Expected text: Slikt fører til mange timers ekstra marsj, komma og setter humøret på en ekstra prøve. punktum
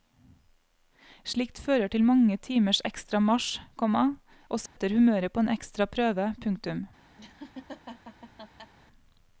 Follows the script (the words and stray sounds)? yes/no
no